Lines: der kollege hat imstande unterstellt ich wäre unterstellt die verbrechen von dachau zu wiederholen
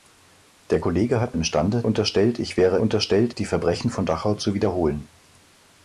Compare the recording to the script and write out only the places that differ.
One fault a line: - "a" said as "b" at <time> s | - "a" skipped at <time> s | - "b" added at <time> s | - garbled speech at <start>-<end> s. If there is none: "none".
none